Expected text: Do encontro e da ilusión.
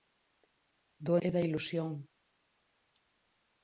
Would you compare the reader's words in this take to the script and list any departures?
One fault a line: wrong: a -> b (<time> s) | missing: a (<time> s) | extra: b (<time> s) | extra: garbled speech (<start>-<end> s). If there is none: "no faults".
missing: encontro (1.1 s)